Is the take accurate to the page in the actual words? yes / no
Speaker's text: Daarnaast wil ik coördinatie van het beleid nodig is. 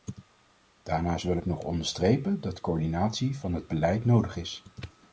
no